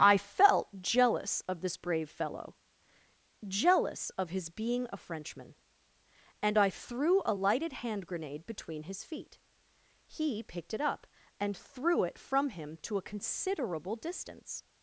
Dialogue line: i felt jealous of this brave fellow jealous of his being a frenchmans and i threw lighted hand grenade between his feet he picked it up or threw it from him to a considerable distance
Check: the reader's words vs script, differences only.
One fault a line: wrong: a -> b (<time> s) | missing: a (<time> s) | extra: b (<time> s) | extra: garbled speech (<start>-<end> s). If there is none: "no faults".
wrong: frenchmans -> frenchman (5.0 s)
extra: a (7.2 s)
wrong: or -> and (11.4 s)